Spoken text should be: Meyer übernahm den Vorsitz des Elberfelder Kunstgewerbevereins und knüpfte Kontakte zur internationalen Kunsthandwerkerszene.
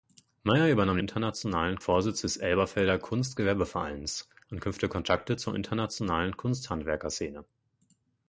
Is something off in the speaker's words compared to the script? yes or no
yes